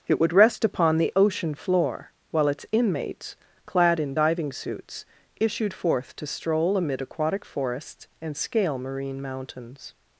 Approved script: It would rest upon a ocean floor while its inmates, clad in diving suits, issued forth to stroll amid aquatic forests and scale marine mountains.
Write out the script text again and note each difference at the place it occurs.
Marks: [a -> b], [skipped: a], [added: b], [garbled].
It would rest upon [a -> the] ocean floor while its inmates, clad in diving suits, issued forth to stroll amid aquatic forests and scale marine mountains.